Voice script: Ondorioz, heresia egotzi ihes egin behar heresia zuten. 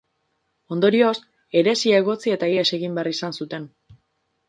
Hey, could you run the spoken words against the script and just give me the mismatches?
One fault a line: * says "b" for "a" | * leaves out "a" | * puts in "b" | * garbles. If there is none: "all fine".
* puts in "eta"
* says "izan" for "heresia"